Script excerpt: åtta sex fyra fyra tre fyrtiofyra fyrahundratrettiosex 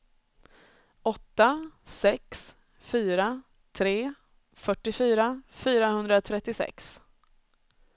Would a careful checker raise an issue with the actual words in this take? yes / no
yes